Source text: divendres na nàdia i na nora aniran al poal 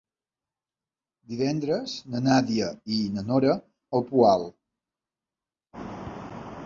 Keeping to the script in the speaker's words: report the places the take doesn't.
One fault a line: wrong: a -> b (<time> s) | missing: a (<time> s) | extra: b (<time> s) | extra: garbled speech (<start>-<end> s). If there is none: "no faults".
missing: aniran (3.5 s)